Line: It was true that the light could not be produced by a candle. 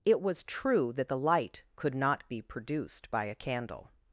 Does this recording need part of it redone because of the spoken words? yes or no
no